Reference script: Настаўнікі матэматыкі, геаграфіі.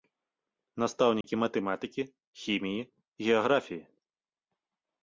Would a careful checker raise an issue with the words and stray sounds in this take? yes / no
yes